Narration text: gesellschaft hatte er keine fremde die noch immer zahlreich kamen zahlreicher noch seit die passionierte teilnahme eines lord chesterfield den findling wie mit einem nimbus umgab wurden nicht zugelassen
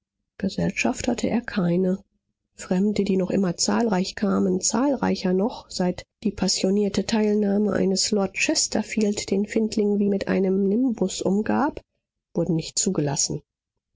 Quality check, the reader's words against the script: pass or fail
pass